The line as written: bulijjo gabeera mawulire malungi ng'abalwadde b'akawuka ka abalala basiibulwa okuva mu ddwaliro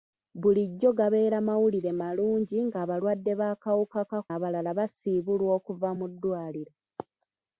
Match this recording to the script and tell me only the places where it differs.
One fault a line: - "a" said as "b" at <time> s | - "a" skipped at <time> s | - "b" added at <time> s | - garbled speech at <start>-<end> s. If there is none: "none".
none